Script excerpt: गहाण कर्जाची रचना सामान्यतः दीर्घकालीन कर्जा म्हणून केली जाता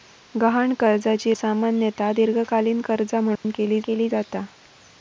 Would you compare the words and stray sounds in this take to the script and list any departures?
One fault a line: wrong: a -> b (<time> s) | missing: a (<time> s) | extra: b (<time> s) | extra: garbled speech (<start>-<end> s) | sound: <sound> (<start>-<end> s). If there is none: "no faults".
missing: रचना (1.3 s)
sound: dropout (3.4-3.4 s)
extra: केली (3.8 s)